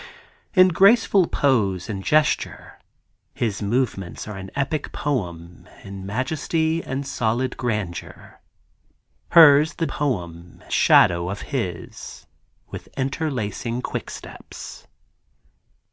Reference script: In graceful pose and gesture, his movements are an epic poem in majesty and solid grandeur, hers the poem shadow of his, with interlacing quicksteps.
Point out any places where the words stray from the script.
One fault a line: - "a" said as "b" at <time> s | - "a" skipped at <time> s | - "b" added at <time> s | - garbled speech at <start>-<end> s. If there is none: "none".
none